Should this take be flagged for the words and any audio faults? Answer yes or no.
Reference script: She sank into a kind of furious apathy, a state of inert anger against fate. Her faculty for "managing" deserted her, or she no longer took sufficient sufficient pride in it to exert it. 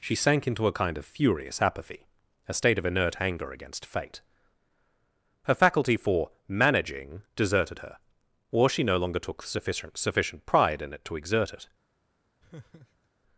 yes